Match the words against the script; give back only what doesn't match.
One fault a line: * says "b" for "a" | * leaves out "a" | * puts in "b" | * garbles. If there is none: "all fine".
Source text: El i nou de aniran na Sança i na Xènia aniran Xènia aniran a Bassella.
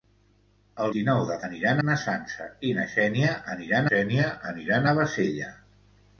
all fine